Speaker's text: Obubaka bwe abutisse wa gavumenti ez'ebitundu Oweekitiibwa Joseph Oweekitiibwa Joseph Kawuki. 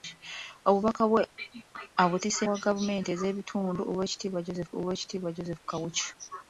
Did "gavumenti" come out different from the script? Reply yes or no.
no